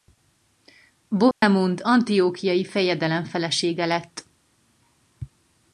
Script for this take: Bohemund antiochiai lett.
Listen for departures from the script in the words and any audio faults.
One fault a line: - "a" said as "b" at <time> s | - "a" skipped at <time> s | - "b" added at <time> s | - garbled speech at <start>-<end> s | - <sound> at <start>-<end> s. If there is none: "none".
- dropout at 1.3-1.4 s
- "fejedelem felesége" added at 2.6 s